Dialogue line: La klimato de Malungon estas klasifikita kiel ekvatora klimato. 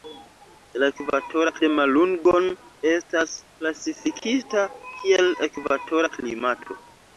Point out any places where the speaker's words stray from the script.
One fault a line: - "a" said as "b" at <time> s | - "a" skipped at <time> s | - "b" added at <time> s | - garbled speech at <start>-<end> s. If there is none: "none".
- "klimato" said as "ekvatora" at 0.9 s